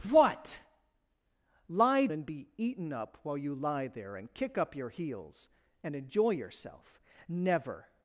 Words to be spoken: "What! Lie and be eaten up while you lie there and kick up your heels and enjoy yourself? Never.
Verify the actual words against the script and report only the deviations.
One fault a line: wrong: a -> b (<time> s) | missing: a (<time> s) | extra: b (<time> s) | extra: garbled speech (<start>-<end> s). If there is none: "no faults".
no faults